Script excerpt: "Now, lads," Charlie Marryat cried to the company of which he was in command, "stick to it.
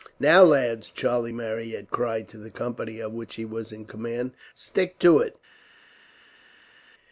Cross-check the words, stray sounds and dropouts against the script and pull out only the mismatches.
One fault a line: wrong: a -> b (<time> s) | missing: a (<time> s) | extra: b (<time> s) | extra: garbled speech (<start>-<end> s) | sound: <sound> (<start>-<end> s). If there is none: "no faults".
no faults